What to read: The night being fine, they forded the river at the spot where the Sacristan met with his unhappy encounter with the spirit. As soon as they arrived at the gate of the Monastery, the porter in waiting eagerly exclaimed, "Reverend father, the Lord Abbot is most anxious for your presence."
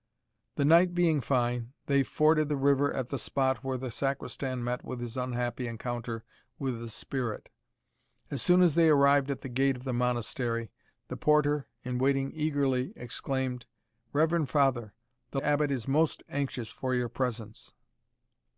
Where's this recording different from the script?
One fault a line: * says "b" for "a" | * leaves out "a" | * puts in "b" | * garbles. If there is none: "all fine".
* leaves out "Lord"